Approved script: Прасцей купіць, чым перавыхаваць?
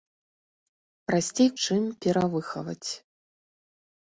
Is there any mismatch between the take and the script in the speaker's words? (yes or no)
yes